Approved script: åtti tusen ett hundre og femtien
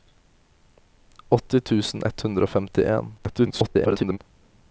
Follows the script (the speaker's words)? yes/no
no